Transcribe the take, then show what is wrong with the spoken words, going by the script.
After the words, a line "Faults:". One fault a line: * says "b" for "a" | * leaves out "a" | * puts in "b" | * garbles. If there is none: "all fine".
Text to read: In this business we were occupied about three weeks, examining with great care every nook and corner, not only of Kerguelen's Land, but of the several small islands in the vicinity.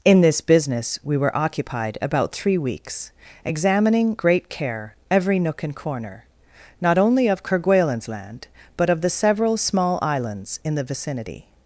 In this business we were occupied about three weeks, examining great care every nook and corner, not only of Kerguelen's Land, but of the several small islands in the vicinity.
Faults:
* leaves out "with"